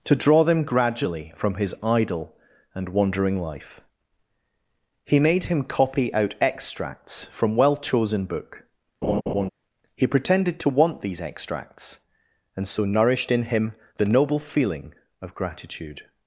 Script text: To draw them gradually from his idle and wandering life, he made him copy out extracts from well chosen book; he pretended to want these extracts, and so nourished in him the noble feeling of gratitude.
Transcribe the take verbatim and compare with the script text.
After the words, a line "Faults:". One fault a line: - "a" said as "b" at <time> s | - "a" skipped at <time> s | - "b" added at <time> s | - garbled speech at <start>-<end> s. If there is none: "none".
To draw them gradually from his idle and wandering life, he made him copy out extracts from well chosen book; he pretended to want these extracts, and so nourished in him the noble feeling of gratitude.
Faults:
none